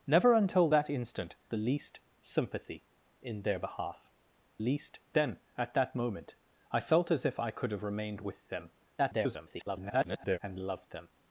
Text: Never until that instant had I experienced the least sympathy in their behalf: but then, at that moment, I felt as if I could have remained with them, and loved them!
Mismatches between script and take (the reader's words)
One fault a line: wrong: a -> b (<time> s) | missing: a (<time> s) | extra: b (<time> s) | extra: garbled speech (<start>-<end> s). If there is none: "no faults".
missing: had I experienced (1.3 s)
wrong: but -> least (4.6 s)
extra: garbled speech (9.0-10.4 s)